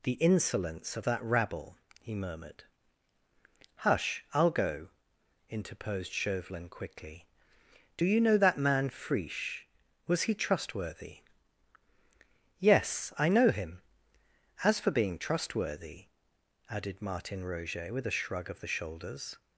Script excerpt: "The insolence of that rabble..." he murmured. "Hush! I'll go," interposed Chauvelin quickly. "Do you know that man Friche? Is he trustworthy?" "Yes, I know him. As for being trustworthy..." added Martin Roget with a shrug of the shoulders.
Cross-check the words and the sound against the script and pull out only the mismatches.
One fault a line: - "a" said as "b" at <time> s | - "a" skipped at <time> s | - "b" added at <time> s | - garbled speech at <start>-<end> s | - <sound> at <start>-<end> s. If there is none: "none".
- "Is" said as "Was" at 10.1 s